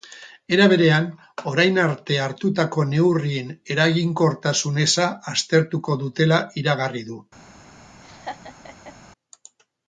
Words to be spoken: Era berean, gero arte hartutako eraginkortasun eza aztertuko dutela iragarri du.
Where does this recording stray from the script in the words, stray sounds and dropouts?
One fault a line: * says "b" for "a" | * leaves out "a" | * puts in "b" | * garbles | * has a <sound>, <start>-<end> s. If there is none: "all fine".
* says "orain" for "gero"
* puts in "neurrien"
* has a laugh, 8.0-9.0 s